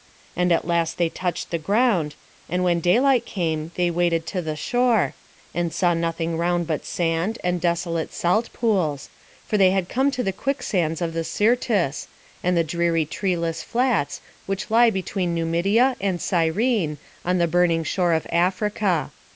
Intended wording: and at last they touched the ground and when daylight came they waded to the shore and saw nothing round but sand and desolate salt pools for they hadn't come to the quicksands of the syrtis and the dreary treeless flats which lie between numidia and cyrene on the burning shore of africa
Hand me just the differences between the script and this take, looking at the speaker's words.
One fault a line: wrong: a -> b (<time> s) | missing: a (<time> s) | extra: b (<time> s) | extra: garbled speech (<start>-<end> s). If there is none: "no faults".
wrong: hadn't -> had (9.7 s)